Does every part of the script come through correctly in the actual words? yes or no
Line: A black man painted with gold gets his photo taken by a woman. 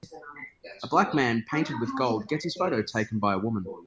yes